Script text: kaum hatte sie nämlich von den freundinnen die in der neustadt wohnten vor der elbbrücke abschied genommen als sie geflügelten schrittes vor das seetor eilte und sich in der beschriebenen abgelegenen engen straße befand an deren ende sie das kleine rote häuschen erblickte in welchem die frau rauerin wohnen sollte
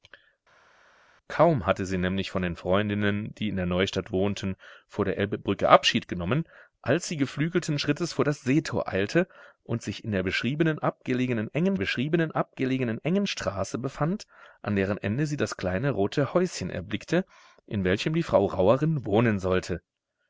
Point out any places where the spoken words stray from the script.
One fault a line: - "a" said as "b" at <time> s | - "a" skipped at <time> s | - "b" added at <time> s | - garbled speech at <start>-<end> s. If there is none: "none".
- "beschriebenen abgelegenen engen" added at 11.8 s